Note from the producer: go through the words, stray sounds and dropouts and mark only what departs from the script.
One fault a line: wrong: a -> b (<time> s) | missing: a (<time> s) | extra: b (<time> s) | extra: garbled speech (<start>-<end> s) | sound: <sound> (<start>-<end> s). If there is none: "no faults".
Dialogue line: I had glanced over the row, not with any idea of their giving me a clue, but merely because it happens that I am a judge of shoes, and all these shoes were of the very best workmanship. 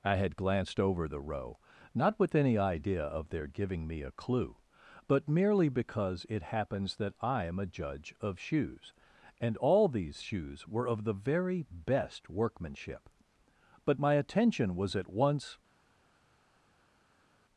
extra: But my attention was at once (13.8 s)